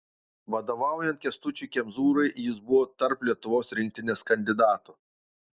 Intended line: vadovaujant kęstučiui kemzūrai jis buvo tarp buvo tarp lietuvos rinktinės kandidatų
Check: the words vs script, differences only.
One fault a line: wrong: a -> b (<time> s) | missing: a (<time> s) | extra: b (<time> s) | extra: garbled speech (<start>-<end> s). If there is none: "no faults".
missing: buvo tarp (3.3 s)